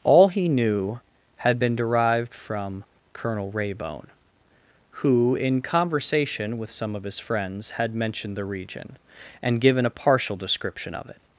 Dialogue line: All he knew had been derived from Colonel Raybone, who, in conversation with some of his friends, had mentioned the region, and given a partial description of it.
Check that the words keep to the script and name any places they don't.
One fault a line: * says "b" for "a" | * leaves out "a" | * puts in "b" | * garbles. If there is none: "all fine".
all fine